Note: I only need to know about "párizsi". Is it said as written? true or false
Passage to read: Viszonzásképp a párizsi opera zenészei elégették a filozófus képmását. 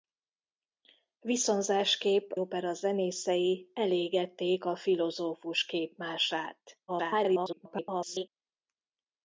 false